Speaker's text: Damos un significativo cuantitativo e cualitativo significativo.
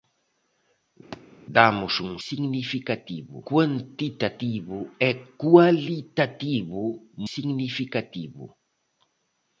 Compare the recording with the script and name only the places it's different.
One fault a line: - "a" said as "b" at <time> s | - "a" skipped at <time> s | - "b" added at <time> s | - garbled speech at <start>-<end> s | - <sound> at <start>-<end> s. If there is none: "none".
- thud at 1.1-1.2 s